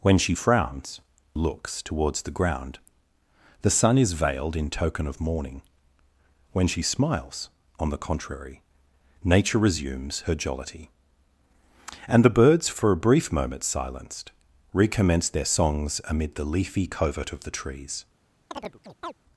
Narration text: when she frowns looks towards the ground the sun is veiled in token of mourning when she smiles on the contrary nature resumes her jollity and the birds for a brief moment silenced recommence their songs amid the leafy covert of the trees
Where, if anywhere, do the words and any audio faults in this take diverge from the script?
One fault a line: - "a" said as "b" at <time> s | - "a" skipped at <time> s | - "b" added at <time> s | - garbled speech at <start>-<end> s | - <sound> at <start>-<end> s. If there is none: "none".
- chirp at 18.5-19.1 s